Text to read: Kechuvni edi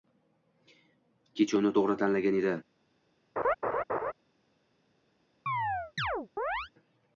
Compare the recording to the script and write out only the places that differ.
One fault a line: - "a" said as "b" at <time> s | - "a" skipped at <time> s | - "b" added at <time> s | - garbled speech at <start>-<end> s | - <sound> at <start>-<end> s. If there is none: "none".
- "to‘g‘ri tanlagan" added at 1.8 s
- laugh at 3.4-4.1 s
- chirp at 5.5-6.7 s